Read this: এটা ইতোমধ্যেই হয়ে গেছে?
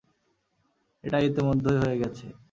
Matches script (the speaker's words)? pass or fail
pass